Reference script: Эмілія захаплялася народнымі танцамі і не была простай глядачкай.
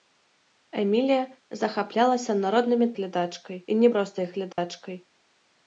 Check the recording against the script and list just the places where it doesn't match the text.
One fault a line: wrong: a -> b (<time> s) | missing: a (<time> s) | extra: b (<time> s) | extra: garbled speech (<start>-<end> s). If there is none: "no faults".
wrong: танцамі -> глядачкай (3.0 s)
missing: была (3.9 s)